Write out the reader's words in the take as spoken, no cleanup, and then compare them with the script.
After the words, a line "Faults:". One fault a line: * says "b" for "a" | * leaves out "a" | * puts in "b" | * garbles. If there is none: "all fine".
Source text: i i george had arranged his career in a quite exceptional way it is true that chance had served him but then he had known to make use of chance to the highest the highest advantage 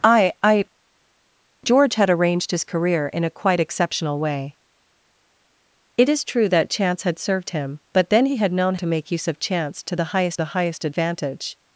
i i george had arranged his career in a quite exceptional way it is true that chance had served him but then he had known to make use of chance to the highest the highest advantage
Faults:
all fine